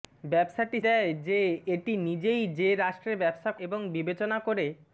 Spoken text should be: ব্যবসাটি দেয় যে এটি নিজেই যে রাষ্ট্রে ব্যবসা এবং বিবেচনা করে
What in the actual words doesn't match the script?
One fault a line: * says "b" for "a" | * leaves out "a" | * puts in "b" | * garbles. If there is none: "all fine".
all fine